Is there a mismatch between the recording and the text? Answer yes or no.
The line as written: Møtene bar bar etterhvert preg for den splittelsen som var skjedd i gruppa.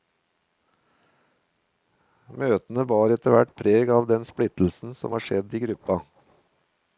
yes